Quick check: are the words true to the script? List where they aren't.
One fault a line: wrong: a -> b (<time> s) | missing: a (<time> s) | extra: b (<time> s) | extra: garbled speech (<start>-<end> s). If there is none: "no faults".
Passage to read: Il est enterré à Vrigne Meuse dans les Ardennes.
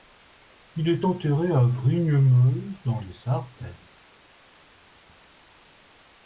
no faults